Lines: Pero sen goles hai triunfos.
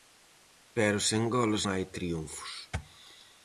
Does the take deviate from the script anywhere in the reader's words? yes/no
no